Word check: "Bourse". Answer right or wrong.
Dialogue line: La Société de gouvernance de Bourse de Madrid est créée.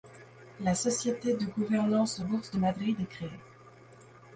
right